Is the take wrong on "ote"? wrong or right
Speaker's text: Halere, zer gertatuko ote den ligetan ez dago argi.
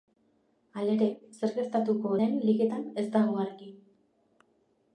wrong